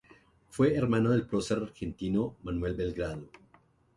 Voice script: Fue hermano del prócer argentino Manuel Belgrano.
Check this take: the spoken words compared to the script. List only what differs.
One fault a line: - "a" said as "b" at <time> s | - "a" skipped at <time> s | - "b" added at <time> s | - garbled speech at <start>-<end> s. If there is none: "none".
none